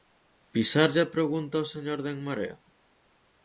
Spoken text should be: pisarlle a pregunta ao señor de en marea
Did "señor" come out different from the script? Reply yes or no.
no